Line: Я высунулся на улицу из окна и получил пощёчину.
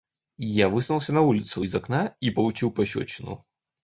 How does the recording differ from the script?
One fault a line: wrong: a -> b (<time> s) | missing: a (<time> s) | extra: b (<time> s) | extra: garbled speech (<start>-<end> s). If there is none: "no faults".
no faults